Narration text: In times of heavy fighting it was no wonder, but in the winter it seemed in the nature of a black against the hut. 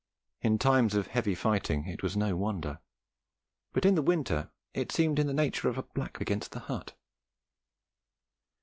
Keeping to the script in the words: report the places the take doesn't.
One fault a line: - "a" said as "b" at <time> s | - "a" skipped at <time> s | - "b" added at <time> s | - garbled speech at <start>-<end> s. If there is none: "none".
none